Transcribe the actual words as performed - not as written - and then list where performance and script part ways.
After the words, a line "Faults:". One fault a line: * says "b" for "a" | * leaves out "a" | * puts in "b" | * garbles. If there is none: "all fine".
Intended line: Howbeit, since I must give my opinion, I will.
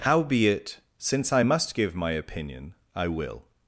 Howbeit, since I must give my opinion, I will.
Faults:
all fine